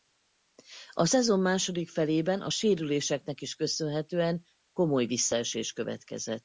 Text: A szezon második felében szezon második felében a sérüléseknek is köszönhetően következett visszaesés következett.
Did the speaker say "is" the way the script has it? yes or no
yes